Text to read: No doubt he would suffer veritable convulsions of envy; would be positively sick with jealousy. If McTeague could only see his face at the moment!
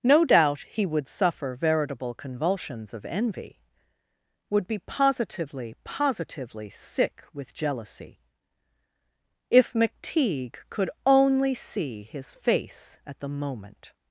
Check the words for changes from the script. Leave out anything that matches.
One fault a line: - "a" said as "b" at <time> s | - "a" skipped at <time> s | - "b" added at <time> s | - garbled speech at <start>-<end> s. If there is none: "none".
- "positively" added at 5.8 s